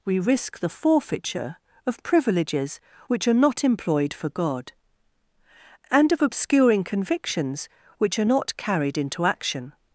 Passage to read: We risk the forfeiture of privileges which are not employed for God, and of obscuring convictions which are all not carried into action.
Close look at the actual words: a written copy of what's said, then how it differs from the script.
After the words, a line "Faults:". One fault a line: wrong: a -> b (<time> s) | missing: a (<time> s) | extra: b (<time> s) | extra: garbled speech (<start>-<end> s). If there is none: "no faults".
We risk the forfeiture of privileges which are not employed for God, and of obscuring convictions which are not carried into action.
Faults:
missing: all (8.3 s)